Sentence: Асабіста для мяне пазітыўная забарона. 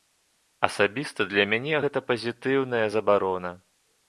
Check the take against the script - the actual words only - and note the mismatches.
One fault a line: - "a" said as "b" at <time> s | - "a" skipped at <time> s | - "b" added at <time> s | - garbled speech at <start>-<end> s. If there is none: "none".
- "гэта" added at 1.8 s